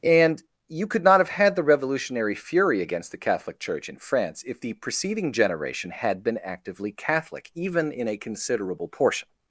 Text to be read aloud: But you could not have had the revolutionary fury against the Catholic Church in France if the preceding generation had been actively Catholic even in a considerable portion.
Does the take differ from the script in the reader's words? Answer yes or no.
yes